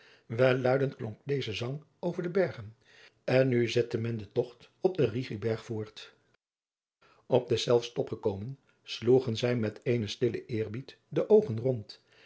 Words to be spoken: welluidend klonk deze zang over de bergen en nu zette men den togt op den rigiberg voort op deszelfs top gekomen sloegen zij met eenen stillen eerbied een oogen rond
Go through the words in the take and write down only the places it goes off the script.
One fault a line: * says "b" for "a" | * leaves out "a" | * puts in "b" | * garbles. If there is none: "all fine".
* says "de" for "een"